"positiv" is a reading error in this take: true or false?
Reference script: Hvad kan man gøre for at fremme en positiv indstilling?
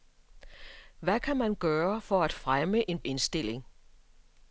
true